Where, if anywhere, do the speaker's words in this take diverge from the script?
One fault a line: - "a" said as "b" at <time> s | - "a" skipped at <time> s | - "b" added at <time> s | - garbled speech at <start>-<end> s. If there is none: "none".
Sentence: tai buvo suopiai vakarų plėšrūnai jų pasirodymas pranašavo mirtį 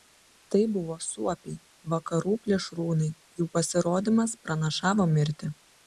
none